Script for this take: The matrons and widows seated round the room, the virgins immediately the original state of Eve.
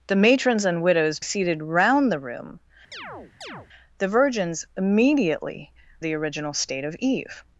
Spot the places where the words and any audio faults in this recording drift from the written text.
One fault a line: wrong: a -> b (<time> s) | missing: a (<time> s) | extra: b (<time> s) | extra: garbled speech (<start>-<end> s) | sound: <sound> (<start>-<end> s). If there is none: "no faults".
sound: chirp (2.9-3.7 s)